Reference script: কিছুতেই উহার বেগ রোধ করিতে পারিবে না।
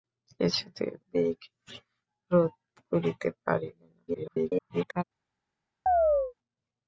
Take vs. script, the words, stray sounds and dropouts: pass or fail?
fail